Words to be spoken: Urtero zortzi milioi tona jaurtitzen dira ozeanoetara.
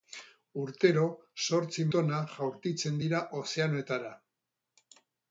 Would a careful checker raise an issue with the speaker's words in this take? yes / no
yes